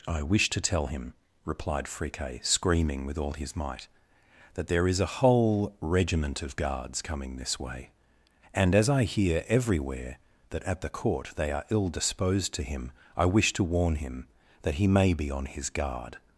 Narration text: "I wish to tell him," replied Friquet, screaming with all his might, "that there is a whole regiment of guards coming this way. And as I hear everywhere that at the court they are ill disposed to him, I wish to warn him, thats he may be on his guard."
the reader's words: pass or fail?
fail